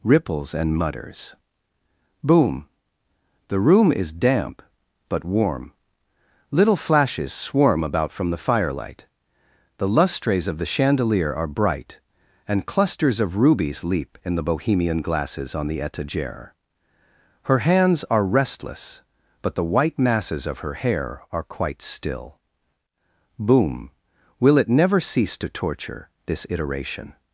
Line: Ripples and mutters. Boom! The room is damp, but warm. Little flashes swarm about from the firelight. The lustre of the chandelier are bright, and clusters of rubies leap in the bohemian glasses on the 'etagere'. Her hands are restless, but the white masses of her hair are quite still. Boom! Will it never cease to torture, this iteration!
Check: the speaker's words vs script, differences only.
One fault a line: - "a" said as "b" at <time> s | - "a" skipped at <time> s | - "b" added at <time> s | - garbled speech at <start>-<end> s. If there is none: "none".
- "lustre" said as "lustres" at 9.9 s